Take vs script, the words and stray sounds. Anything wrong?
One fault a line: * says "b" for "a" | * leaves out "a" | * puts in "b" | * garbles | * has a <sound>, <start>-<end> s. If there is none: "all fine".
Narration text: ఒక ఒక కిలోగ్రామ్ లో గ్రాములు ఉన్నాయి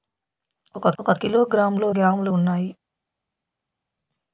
all fine